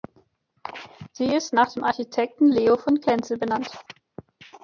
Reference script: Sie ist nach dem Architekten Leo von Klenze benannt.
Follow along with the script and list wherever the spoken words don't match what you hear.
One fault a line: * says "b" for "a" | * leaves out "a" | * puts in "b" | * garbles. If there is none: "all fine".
all fine